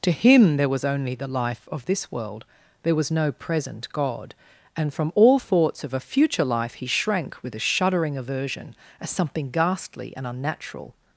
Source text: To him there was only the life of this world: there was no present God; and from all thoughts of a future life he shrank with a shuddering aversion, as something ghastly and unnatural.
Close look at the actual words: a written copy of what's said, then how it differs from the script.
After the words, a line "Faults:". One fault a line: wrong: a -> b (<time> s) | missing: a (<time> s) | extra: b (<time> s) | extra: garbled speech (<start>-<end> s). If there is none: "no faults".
To him there was only the life of this world: there was no present God; and from all thoughts of a future life he shrank with a shuddering aversion, as something ghastly and unnatural.
Faults:
no faults